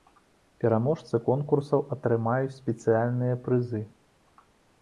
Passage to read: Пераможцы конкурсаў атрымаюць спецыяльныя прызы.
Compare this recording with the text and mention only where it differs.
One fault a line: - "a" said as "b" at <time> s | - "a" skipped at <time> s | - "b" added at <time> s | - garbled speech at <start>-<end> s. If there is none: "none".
none